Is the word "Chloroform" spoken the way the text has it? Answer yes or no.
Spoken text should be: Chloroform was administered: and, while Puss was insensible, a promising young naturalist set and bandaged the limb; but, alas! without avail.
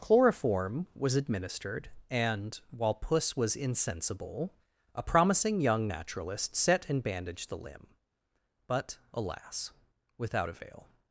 yes